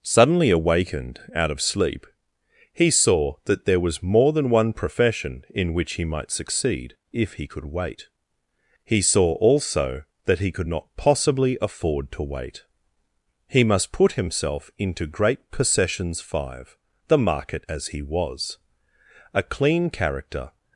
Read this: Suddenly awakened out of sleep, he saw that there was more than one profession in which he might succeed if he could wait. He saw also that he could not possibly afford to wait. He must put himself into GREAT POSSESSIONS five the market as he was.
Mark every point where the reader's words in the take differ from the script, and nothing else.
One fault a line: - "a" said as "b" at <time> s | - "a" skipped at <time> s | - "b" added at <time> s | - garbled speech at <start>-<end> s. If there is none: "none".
- "A clean character" added at 19.3 s